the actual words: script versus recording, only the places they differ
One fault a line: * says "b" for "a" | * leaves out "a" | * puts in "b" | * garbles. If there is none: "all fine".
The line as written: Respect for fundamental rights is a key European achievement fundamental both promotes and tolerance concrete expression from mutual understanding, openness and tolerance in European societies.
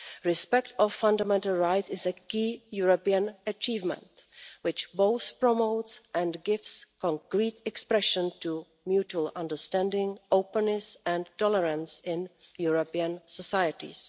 * says "which" for "fundamental"
* says "gives" for "tolerance"
* says "to" for "from"